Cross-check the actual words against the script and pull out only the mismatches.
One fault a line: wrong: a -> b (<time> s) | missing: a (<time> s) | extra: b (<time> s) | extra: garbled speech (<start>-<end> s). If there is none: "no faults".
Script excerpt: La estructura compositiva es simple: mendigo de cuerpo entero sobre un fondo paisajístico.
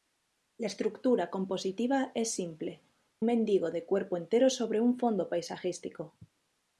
no faults